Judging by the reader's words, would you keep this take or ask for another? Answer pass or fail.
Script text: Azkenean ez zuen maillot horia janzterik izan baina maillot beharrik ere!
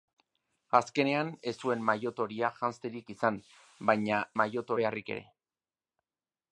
pass